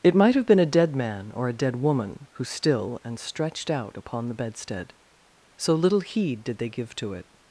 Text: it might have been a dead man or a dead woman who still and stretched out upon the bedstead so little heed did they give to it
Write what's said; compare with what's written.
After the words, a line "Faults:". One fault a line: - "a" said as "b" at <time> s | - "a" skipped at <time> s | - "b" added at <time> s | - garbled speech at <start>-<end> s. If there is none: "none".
it might have been a dead man or a dead woman who still and stretched out upon the bedstead so little heed did they give to it
Faults:
none